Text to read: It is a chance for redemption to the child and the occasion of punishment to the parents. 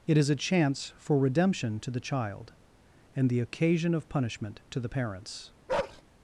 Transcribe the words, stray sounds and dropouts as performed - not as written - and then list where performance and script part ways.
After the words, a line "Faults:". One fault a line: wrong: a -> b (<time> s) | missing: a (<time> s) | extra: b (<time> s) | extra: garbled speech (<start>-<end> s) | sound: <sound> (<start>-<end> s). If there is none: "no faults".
It is a chance for redemption to the child and the occasion of punishment to the parents.
Faults:
sound: bark (5.7-6.0 s)